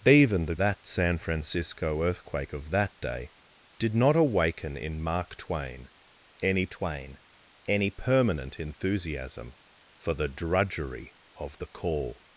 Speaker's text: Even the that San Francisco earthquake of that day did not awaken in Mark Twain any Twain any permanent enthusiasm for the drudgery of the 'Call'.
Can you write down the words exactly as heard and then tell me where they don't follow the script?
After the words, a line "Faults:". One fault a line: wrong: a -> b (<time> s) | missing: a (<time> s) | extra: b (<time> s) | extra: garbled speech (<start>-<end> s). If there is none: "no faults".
Even the that San Francisco earthquake of that day did not awaken in Mark Twain any Twain any permanent enthusiasm for the drudgery of the 'Call'.
Faults:
no faults